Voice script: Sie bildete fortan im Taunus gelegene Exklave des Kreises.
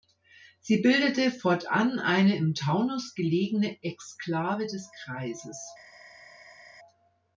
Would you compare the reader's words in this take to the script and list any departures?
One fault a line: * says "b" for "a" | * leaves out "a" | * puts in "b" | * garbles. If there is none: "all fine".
* puts in "eine"